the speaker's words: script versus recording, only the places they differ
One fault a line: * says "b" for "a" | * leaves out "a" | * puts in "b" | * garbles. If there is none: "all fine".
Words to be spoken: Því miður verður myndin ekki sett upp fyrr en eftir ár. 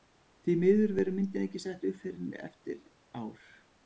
all fine